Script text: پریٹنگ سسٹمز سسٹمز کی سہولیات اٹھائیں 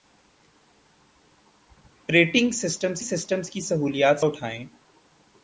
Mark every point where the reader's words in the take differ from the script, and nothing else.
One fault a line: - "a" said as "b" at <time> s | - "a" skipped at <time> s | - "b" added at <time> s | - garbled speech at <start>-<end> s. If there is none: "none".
none